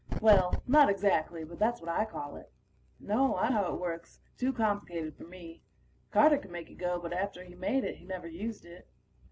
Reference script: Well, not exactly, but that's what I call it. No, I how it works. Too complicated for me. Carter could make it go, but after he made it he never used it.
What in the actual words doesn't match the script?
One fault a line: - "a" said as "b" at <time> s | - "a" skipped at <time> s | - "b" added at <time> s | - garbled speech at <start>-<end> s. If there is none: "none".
none